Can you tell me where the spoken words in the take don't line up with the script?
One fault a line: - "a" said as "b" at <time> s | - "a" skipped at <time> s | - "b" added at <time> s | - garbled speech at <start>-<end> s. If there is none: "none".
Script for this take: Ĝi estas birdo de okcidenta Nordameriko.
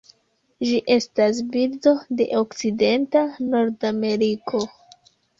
none